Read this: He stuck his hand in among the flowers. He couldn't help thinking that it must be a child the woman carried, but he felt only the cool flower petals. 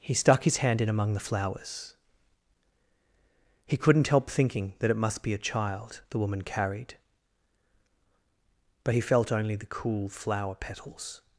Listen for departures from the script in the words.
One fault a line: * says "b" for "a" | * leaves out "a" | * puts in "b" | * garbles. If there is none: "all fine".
all fine